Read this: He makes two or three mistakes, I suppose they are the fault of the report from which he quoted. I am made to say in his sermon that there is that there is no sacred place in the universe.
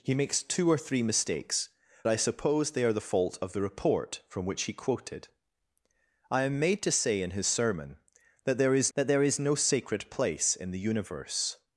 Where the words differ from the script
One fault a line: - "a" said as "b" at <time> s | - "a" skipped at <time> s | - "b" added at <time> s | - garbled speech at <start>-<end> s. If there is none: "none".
none